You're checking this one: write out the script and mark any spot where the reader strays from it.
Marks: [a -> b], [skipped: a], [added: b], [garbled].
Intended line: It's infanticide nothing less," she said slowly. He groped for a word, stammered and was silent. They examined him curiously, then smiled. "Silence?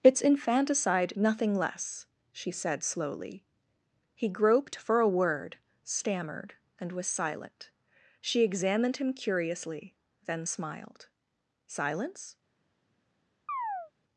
It's infanticide nothing less," she said slowly. He groped for a word, stammered and was silent. [They -> She] examined him curiously, then smiled. "Silence?